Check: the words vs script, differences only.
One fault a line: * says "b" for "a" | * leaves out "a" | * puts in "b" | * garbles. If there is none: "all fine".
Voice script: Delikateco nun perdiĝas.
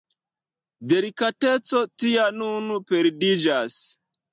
* puts in "tia"